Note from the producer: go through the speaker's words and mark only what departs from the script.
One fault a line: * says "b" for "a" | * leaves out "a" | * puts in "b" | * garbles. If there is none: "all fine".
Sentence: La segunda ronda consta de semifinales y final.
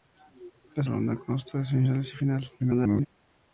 * leaves out "segunda"
* garbles